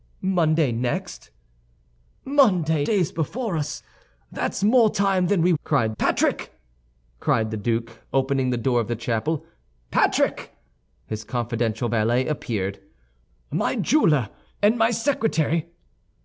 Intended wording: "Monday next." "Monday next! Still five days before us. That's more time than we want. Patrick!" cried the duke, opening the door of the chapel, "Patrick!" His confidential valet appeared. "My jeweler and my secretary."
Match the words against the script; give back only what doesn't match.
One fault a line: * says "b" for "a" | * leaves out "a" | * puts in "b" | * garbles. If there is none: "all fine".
* leaves out "next Still five"
* says "cried" for "want"